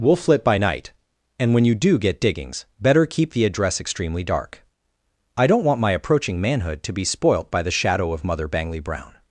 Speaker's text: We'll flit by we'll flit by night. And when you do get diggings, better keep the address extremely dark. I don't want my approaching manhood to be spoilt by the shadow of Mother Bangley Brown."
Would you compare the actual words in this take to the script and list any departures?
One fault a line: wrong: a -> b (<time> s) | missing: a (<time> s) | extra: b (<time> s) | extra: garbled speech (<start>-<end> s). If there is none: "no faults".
missing: we'll flit by (0.6 s)